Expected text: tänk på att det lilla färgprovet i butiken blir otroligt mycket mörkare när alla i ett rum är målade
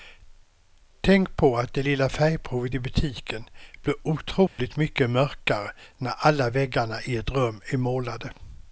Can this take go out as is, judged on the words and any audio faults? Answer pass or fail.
fail